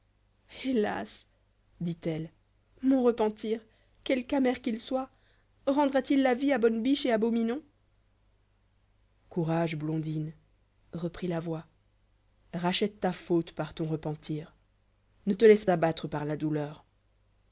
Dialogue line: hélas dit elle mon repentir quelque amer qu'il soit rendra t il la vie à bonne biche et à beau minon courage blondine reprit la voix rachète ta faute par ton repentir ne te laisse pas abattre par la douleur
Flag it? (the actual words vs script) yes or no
yes